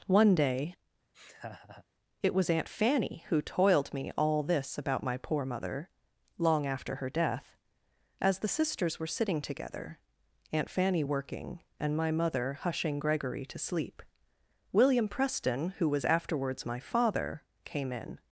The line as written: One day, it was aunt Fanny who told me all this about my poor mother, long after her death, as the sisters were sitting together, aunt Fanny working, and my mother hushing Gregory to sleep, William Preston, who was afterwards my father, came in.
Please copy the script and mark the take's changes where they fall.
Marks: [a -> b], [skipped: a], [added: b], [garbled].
One day, it was aunt Fanny who [told -> toiled] me all this about my poor mother, long after her death, as the sisters were sitting together, aunt Fanny working, and my mother hushing Gregory to sleep, William Preston, who was afterwards my father, came in.